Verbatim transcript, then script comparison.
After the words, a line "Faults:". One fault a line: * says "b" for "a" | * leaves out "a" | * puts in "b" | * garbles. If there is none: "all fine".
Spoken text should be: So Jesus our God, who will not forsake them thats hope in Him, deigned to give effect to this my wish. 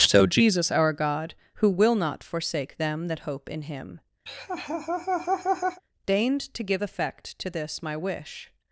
So Jesus our God, who will not forsake them that hope in Him, deigned to give effect to this my wish.
Faults:
* says "that" for "thats"